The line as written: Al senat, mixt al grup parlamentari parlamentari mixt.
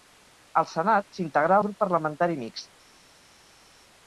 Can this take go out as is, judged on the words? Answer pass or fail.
fail